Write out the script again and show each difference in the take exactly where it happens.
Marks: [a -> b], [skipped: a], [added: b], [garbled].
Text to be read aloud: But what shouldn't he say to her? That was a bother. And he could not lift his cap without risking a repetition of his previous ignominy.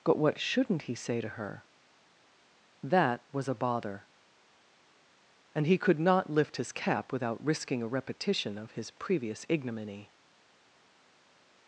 But what shouldn't he say to her? That was a bother. And he could not lift his cap without risking a repetition of his previous ignominy.